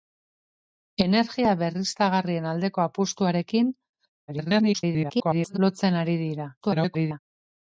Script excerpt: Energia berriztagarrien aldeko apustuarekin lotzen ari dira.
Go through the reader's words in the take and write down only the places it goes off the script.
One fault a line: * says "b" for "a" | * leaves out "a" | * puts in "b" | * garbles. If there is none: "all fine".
* garbles
* garbles